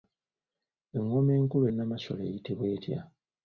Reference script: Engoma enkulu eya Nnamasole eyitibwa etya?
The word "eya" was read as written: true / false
false